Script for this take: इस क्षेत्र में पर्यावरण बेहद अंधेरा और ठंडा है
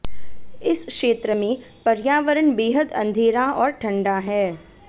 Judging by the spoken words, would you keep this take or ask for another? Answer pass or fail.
pass